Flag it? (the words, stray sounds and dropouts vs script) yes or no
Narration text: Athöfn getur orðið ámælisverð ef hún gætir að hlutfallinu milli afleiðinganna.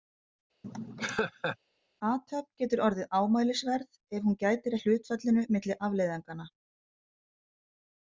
yes